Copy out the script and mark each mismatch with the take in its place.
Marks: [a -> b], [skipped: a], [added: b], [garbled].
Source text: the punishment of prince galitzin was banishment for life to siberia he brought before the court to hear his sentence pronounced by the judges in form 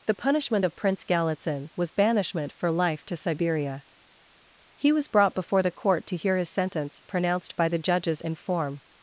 the punishment of prince galitzin was banishment for life to siberia he [added: was] brought before the court to hear his sentence pronounced by the judges in form